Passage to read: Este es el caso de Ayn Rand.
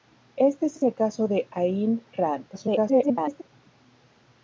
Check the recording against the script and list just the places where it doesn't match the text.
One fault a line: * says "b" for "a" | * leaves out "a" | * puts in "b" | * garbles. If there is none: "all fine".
* puts in "es"
* garbles